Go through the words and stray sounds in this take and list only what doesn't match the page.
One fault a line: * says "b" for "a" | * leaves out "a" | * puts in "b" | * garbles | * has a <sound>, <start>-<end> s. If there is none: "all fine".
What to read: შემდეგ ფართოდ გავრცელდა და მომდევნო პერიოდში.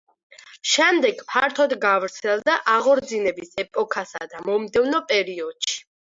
* puts in "აღორძინების ეპოქასა"